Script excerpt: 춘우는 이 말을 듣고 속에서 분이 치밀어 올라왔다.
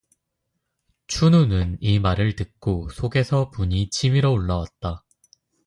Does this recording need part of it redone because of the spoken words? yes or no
no